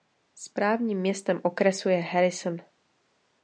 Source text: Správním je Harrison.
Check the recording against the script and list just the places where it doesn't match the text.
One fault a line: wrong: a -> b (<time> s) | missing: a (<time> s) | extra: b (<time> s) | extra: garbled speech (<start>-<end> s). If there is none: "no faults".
extra: městem okresu (1.0 s)